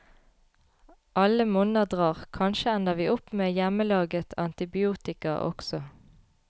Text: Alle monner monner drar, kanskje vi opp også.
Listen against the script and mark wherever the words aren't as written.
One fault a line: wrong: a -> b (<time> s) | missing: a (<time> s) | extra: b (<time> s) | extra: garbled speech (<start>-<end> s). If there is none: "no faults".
missing: monner (1.9 s)
extra: ender (2.8 s)
extra: med hjemmelaget antibiotika (3.4 s)